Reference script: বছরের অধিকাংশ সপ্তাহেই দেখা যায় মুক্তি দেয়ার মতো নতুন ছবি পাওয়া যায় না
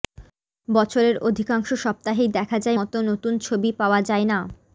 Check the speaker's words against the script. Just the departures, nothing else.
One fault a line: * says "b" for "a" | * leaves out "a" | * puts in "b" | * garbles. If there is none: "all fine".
* leaves out "মুক্তি দেয়ার"